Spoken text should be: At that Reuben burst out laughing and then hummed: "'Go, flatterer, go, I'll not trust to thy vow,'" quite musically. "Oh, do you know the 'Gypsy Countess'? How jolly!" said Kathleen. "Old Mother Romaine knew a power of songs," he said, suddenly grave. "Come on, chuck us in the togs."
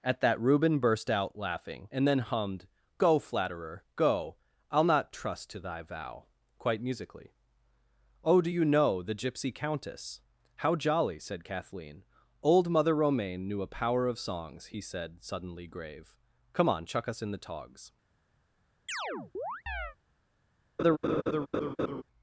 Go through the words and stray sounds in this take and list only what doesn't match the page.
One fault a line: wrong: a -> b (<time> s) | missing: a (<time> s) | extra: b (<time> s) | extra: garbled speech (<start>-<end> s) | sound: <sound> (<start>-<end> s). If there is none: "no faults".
sound: chirp (18.9-20.0 s)
sound: laugh (20.8-22.0 s)